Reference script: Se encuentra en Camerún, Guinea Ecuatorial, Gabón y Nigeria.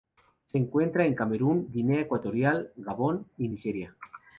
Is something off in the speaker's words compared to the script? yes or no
no